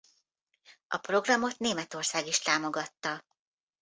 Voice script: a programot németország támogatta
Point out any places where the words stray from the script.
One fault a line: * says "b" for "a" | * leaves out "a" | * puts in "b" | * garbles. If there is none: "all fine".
* puts in "is"